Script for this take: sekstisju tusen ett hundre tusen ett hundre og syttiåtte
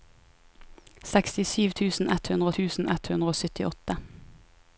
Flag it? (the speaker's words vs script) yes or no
no